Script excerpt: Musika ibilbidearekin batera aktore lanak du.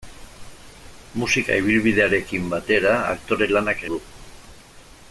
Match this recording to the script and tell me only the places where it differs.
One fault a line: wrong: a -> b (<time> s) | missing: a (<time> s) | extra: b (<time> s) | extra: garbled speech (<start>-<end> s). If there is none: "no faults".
no faults